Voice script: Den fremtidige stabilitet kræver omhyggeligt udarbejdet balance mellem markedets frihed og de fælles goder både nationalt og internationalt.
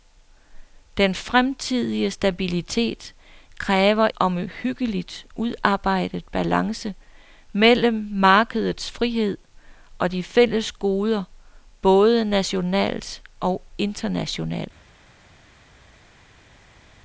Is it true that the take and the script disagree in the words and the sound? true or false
false